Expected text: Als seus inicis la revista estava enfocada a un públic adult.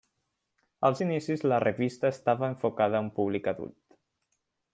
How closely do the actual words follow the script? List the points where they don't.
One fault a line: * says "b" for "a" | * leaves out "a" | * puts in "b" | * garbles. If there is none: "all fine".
* leaves out "seus"